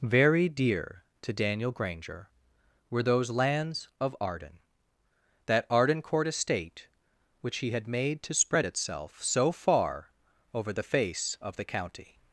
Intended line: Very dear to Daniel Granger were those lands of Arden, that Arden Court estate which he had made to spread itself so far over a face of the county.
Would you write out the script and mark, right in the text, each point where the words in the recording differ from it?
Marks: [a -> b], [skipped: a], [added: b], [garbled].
Very dear to Daniel Granger were those lands of Arden, that Arden Court estate which he had made to spread itself so far over [a -> the] face of the county.